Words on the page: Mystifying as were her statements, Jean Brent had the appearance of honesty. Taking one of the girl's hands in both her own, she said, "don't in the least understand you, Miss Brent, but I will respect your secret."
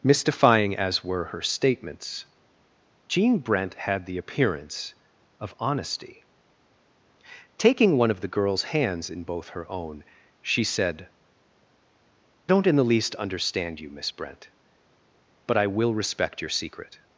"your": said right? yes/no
yes